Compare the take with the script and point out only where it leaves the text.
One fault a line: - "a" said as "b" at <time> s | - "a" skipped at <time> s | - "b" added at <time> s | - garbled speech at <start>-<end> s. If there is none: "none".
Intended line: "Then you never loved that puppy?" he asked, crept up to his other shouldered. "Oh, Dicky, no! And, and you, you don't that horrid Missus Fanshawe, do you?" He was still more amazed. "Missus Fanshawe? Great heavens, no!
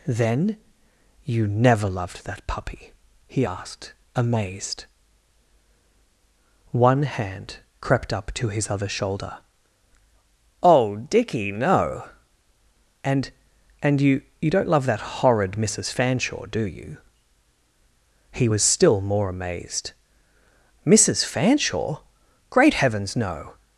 - "amazed One hand" added at 4.1 s
- "shouldered" said as "shoulder" at 8.9 s
- "love" added at 14.7 s